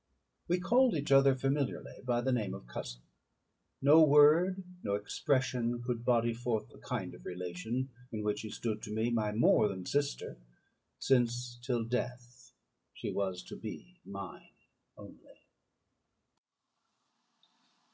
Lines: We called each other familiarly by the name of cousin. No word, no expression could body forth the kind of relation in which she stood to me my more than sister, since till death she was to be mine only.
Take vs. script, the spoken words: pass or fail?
pass